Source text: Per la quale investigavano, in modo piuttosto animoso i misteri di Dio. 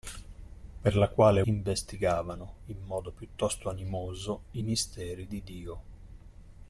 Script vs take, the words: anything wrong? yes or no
no